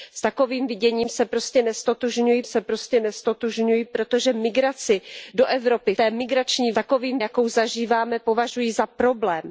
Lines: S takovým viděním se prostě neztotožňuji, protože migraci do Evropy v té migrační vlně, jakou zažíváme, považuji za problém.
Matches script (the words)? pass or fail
fail